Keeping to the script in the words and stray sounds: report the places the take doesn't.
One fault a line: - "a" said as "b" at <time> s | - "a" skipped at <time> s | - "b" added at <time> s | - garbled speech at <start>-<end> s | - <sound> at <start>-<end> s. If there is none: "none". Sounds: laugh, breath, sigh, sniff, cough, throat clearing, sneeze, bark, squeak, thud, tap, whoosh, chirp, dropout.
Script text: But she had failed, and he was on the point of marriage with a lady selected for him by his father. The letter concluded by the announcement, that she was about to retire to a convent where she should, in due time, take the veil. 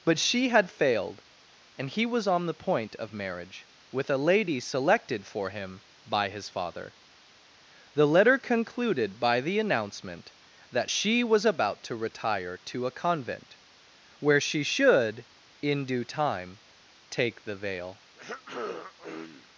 - throat clearing at 18.2-19.5 s